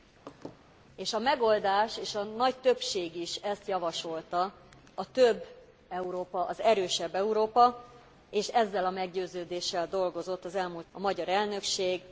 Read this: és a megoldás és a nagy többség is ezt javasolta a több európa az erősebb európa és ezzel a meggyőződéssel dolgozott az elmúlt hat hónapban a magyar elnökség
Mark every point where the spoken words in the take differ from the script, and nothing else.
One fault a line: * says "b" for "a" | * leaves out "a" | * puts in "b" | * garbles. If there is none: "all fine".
* leaves out "hat hónapban"